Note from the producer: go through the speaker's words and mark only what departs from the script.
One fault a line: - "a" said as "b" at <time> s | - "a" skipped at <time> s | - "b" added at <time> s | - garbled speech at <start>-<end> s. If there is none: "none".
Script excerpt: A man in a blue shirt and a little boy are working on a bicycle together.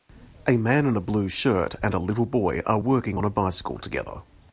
none